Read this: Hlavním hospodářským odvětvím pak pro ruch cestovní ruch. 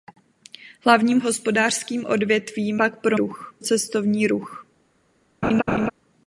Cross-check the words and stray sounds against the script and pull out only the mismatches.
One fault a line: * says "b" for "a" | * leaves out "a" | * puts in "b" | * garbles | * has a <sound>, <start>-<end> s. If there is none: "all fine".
* has a laugh, 5.4-5.9 s